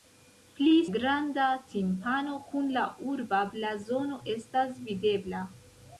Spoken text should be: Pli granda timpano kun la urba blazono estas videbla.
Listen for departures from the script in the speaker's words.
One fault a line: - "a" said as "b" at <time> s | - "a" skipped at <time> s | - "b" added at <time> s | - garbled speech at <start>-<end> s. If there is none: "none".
none